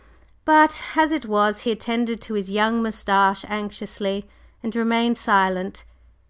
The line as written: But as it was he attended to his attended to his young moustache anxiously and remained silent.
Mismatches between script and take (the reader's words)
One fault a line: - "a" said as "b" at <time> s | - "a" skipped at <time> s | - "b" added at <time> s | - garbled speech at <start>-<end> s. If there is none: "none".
- "attended to his" skipped at 2.5 s